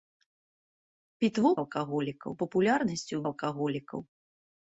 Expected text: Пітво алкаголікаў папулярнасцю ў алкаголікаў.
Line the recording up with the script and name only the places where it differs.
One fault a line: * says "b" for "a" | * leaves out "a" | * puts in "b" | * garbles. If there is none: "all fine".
all fine